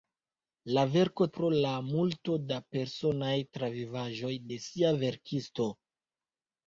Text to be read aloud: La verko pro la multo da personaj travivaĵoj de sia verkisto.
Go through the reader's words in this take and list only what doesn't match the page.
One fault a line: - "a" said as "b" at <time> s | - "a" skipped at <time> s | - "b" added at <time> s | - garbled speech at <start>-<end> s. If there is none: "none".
none